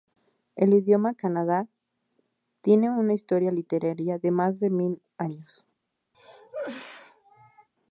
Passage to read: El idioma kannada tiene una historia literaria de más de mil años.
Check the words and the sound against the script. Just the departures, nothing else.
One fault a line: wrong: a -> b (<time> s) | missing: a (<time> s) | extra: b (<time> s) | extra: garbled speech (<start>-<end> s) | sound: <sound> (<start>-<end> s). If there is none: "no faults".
sound: cough (6.1-7.7 s)